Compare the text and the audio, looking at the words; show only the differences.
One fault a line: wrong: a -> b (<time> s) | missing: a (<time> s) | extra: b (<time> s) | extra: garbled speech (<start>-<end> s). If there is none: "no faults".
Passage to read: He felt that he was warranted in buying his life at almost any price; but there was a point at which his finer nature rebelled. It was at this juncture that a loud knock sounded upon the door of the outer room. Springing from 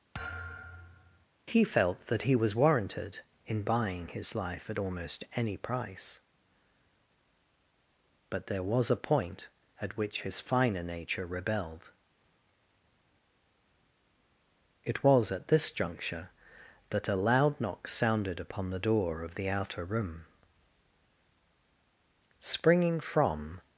no faults